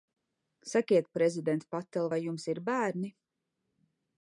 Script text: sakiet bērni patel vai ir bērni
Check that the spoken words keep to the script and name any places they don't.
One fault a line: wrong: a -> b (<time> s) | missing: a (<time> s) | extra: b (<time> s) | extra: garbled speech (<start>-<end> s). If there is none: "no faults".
wrong: bērni -> prezident (1.2 s)
extra: jums (2.3 s)